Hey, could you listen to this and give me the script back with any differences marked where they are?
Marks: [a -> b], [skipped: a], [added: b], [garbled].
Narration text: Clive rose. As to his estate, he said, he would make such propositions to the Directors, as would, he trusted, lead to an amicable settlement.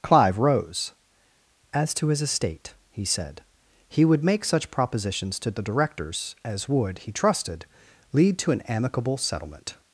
Clive rose. As to his estate, he said, he would make such propositions to the Directors, as would, he trusted, lead to an amicable settlement.